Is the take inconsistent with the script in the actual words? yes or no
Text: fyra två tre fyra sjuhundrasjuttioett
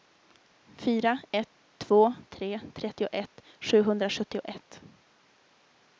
yes